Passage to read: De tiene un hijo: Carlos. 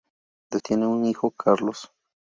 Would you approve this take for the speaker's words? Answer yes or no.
yes